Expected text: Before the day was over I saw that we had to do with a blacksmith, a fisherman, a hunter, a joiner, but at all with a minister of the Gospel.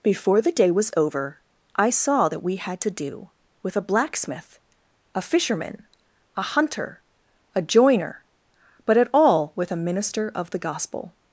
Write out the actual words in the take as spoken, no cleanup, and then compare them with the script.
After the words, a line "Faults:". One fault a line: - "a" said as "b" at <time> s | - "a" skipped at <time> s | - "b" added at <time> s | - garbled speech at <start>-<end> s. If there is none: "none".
Before the day was over I saw that we had to do with a blacksmith, a fisherman, a hunter, a joiner, but at all with a minister of the Gospel.
Faults:
none